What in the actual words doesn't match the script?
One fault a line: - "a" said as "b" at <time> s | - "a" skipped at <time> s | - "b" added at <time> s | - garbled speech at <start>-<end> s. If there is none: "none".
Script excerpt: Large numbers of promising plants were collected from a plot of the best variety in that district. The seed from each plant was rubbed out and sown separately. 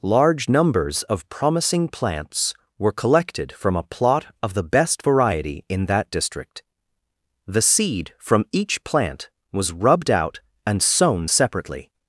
none